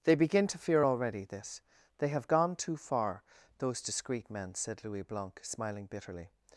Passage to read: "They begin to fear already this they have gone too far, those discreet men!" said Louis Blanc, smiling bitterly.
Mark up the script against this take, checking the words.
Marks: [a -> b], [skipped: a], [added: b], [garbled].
"They begin to fear already this they have gone too far, those discreet men!" said Louis Blanc, smiling bitterly.